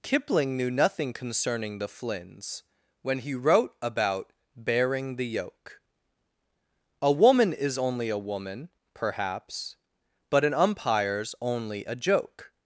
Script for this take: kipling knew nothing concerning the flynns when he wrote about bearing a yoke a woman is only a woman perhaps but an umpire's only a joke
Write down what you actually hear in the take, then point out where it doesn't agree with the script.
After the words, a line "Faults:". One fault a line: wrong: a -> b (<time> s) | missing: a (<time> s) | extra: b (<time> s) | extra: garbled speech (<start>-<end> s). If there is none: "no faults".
kipling knew nothing concerning the flynns when he wrote about bearing the yoke a woman is only a woman perhaps but an umpire's only a joke
Faults:
wrong: a -> the (5.2 s)